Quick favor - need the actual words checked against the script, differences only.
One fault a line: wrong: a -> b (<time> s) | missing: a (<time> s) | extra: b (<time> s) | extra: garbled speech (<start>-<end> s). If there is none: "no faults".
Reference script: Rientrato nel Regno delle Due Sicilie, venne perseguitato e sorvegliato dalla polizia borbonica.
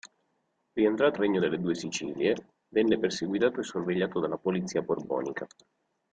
missing: nel (1.2 s)